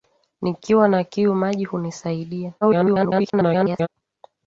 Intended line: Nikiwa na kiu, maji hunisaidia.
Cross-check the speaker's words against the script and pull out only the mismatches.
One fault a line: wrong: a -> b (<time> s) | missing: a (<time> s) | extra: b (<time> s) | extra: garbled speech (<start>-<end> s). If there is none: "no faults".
extra: garbled speech (2.6-3.9 s)